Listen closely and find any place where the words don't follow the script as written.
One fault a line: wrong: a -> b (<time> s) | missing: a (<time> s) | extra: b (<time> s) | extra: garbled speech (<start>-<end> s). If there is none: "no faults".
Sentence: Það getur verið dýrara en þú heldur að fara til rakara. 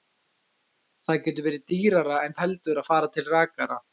missing: þú (2.4 s)